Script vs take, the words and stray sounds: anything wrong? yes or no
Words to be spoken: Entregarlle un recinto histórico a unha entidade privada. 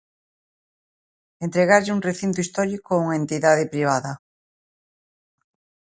no